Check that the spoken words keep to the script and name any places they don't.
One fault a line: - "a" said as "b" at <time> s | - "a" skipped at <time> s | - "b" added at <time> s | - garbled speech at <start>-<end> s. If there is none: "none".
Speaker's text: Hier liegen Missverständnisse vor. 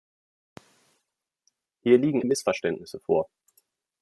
none